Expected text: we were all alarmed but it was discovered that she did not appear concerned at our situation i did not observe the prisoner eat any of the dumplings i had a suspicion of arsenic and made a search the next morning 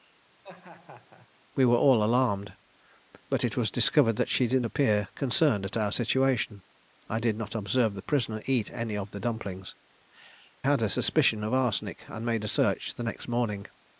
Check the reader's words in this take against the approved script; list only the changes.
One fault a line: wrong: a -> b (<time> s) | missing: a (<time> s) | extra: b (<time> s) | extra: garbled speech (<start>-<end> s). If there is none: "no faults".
missing: not (4.6 s)
missing: i (9.8 s)